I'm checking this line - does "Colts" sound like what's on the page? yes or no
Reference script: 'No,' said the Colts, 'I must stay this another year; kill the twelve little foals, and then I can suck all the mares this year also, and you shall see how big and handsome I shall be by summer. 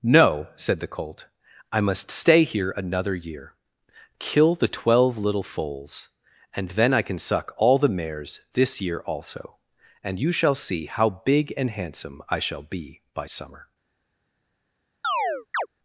no